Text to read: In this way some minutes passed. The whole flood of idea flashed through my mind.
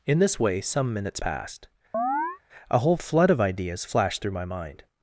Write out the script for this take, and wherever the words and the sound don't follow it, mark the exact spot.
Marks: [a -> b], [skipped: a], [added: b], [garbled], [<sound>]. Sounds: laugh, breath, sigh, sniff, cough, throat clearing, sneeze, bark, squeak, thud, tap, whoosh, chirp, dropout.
In this way some minutes passed. [chirp] [The -> A] whole flood of [idea -> ideas] flashed through my mind.